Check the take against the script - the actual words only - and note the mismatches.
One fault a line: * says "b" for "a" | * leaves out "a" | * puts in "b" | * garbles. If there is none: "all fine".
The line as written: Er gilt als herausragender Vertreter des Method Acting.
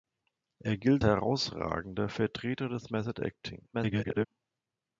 * leaves out "als"
* garbles